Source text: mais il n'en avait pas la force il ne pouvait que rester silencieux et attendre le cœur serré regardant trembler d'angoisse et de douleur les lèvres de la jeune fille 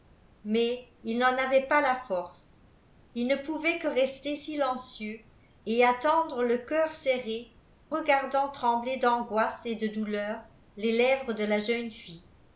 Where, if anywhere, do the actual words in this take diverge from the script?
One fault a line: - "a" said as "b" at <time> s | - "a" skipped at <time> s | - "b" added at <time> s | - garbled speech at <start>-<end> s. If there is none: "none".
none